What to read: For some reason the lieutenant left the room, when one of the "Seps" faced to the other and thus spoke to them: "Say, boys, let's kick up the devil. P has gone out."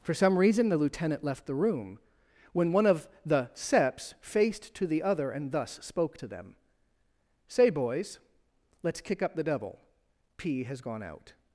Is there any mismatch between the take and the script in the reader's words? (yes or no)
no